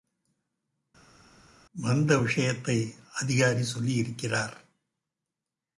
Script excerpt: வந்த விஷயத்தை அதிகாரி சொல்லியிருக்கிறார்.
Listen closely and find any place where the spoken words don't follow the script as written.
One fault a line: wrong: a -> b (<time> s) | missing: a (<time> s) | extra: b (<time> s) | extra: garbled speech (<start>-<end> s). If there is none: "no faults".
no faults